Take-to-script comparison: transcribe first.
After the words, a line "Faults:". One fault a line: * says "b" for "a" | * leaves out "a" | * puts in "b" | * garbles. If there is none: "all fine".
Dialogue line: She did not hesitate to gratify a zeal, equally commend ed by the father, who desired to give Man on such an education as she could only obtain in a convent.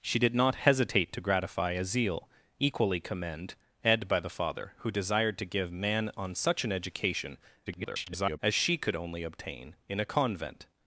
She did not hesitate to gratify a zeal, equally commend ed by the father, who desired to give Man on such an education [garbled] as she could only obtain in a convent.
Faults:
* garbles